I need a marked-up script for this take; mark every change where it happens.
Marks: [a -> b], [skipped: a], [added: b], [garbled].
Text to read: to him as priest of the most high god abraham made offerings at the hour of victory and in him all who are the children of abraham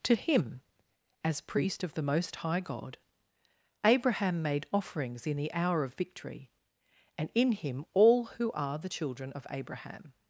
to him as priest of the most high god abraham made offerings [at -> in] the hour of victory and in him all who are the children of abraham